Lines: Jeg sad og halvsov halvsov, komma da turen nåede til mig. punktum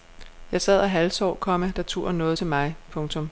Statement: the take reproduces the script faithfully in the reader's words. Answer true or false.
false